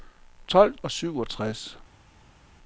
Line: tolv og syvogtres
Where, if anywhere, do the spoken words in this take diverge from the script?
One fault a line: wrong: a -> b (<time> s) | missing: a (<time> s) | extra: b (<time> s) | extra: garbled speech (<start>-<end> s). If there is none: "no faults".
no faults